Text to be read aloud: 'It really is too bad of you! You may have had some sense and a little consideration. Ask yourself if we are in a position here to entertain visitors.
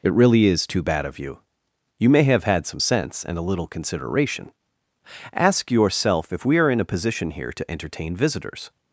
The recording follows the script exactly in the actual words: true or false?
true